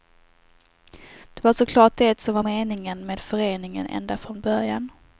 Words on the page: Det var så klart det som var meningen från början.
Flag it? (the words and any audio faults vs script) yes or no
yes